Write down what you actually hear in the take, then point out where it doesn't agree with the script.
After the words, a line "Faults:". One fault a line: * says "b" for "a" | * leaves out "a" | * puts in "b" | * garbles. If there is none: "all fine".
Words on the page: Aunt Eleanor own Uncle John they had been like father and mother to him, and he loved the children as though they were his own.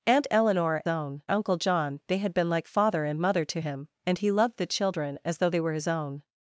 Aunt Eleanor own Uncle John they had been like father and mother to him, and he loved the children as though they were his own.
Faults:
all fine